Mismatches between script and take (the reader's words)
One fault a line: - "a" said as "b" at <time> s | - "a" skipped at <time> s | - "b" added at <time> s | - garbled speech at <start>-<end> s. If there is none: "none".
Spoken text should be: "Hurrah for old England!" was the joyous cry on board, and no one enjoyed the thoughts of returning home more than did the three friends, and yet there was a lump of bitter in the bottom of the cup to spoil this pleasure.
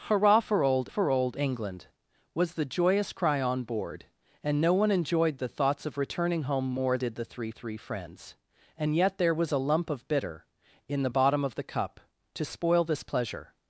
- "for old" added at 0.9 s
- "than" skipped at 7.0 s
- "three" added at 7.5 s